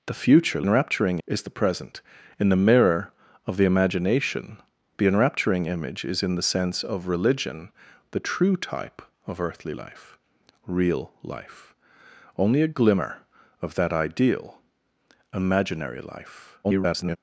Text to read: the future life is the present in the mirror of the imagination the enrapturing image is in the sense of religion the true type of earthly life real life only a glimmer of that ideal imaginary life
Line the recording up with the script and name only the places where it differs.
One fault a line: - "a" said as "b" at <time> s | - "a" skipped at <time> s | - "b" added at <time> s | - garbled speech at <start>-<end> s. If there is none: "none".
- "life" said as "enrapturing" at 0.6 s
- garbled speech at 16.6-17.2 s